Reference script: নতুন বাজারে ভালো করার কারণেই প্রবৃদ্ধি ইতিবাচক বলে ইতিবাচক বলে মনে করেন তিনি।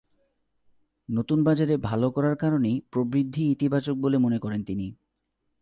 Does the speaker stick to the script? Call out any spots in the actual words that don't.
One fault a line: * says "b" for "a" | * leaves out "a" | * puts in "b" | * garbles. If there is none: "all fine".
* leaves out "ইতিবাচক বলে"